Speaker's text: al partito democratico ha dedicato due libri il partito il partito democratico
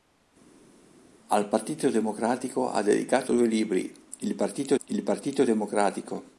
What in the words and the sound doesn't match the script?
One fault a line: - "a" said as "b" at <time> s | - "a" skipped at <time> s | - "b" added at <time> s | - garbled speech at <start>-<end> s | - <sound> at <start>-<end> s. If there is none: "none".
none